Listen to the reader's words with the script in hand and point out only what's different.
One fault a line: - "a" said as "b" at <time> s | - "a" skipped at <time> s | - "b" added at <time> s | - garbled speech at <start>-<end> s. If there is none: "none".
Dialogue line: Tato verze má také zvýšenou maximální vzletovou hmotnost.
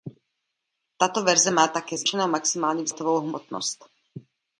none